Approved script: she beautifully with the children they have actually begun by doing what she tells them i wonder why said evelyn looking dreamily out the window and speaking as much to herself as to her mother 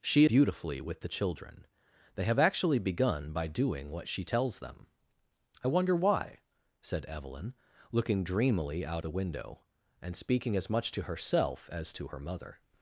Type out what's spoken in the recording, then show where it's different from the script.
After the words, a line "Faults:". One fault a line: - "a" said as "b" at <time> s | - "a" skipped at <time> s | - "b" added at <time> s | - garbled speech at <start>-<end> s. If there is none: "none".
she beautifully with the children they have actually begun by doing what she tells them i wonder why said evelyn looking dreamily out the window and speaking as much to herself as to her mother
Faults:
none